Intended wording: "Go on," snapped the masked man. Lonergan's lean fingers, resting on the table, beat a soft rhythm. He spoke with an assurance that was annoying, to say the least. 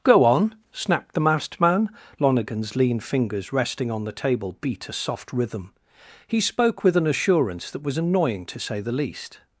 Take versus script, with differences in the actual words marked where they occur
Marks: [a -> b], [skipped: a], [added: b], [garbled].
"Go on," snapped the masked man. Lonergan's lean fingers, resting on the table, beat a soft rhythm. He spoke with an assurance that was annoying, to say the least.